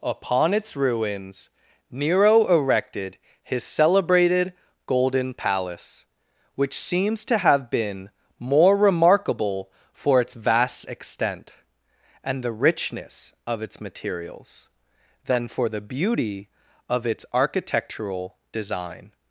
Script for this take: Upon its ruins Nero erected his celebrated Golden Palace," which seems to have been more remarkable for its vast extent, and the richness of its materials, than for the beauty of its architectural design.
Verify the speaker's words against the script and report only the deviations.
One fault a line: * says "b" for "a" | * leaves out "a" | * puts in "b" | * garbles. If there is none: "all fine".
all fine